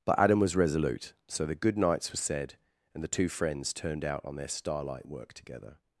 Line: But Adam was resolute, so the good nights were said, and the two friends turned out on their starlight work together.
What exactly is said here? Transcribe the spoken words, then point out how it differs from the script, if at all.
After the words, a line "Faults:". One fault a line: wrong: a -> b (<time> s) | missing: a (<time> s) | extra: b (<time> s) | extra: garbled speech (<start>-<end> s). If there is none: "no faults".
But Adam was resolute, so the good nights were said, and the two friends turned out on their starlight work together.
Faults:
no faults